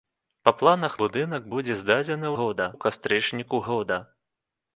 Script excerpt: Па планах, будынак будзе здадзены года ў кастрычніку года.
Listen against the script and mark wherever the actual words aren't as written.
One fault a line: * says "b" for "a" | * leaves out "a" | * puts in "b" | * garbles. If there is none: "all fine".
all fine